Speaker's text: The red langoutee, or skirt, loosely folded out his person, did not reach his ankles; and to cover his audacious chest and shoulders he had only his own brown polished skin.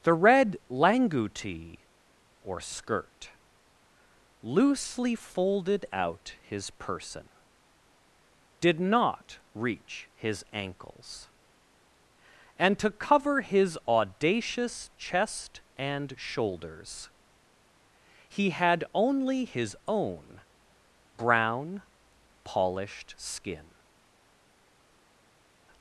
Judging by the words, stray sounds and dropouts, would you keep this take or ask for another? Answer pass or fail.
pass